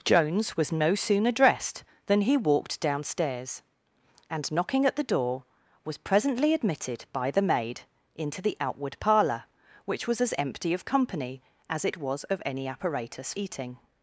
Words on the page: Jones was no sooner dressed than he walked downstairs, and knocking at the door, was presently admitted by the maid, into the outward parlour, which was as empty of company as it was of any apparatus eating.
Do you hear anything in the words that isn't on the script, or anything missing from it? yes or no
no